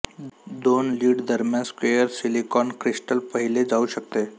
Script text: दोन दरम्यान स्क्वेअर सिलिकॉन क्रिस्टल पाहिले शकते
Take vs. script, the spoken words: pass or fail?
fail